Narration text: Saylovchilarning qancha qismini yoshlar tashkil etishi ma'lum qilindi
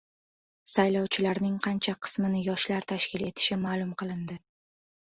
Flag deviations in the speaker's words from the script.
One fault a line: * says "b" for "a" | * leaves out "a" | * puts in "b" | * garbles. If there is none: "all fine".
all fine